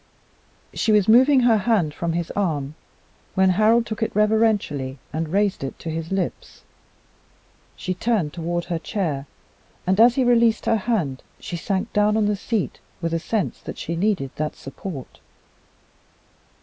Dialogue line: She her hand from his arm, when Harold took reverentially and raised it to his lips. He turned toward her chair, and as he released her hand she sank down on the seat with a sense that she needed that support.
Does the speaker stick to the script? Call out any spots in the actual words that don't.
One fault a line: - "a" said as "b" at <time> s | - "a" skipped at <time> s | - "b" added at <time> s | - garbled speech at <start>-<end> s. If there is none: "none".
- "was moving" added at 0.9 s
- "it" added at 4.0 s
- "He" said as "She" at 7.7 s